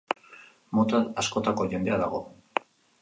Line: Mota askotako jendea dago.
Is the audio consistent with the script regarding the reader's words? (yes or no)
yes